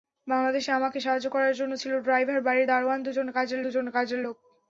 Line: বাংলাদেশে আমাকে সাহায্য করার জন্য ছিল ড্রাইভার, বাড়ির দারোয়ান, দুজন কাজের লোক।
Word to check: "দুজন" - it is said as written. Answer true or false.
true